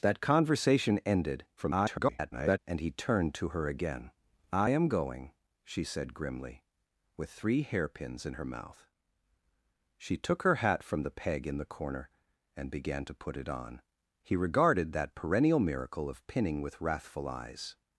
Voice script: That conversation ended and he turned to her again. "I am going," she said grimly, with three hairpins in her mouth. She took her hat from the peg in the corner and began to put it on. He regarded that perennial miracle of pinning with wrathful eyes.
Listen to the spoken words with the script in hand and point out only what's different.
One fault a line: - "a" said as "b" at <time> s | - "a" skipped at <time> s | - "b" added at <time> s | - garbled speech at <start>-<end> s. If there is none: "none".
- garbled speech at 1.6-2.6 s